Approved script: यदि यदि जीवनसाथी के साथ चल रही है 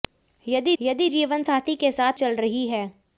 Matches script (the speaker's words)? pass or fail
pass